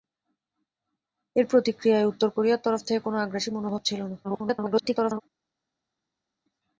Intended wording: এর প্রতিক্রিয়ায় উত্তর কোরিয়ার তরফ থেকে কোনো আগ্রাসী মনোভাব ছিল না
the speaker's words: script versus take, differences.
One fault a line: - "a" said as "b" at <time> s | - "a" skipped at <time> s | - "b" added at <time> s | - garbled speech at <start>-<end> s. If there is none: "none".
- garbled speech at 4.2-5.2 s